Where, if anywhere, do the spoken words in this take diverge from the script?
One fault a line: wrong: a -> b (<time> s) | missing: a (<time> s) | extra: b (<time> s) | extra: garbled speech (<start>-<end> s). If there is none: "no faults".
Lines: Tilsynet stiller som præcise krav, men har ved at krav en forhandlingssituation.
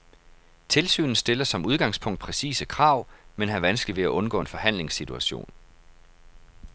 extra: udgangspunkt (1.6 s)
extra: vanskeligt (3.6 s)
wrong: krav -> undgå (4.1 s)